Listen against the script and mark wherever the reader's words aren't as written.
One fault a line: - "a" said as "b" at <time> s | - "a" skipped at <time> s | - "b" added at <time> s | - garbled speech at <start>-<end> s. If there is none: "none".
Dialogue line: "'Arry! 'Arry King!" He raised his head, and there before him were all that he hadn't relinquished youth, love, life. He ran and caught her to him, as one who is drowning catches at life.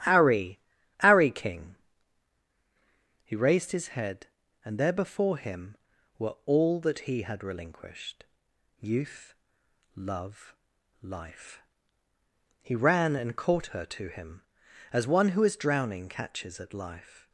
- "hadn't" said as "had" at 7.2 s